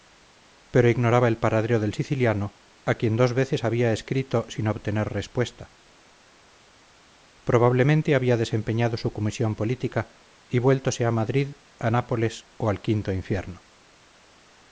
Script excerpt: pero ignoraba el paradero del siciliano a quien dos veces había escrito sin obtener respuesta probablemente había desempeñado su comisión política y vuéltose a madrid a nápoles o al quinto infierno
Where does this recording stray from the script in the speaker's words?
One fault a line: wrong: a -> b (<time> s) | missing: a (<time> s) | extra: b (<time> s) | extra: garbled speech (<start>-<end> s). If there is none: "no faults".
no faults